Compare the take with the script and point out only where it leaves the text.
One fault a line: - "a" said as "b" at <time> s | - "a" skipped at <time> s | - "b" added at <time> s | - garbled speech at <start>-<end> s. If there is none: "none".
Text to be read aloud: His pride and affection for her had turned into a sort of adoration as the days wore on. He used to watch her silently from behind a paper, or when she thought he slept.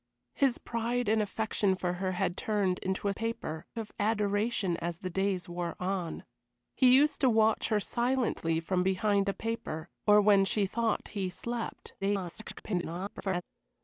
- "sort" said as "paper" at 3.1 s
- garbled speech at 12.0-13.4 s